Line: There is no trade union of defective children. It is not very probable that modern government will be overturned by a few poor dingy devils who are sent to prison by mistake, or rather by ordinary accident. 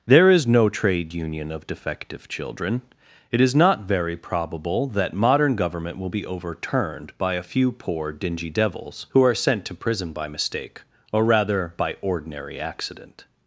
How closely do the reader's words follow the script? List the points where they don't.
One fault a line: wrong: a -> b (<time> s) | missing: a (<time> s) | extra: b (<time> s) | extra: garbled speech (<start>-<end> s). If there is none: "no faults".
no faults